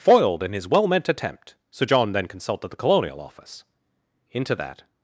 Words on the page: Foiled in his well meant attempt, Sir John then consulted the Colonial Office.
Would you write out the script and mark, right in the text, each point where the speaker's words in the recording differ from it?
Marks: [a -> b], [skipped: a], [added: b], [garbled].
Foiled in his well meant attempt, Sir John then consulted the Colonial Office. [added: Into that]